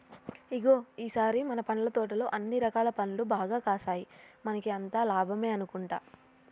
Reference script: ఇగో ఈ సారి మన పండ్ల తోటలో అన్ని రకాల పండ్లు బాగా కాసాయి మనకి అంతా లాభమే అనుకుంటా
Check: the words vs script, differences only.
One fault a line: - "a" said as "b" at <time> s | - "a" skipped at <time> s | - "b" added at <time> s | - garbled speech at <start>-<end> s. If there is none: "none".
none